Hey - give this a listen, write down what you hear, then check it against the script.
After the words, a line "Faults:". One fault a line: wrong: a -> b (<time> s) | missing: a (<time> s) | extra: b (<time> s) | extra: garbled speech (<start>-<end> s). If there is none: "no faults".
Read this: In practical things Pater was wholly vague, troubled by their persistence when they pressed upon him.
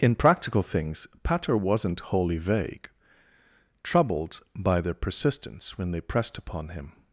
In practical things Pater wasn't wholly vague, troubled by their persistence when they pressed upon him.
Faults:
wrong: was -> wasn't (1.5 s)